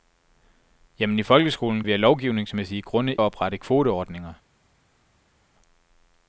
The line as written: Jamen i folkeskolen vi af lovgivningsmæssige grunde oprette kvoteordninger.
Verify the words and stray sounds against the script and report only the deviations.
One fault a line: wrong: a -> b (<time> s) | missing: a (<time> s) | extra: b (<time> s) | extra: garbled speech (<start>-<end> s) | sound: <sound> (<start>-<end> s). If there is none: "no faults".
no faults